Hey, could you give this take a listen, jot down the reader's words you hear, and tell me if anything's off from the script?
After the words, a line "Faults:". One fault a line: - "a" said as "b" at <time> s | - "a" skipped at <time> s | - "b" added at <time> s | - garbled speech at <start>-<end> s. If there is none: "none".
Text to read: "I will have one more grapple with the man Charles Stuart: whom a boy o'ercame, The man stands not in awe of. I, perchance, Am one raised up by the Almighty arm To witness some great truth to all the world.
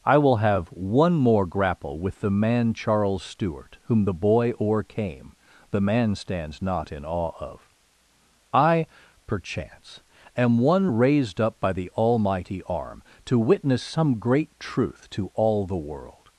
"I will have one more grapple with the man Charles Stuart: whom the boy o'ercame, The man stands not in awe of. I, perchance, Am one raised up by the Almighty arm To witness some great truth to all the world.
Faults:
- "a" said as "the" at 4.0 s